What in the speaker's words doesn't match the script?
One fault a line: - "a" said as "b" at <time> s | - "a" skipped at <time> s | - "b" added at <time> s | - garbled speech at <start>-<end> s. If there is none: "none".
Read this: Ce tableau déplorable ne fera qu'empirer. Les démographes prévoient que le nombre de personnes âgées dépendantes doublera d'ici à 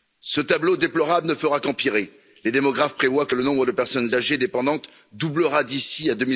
none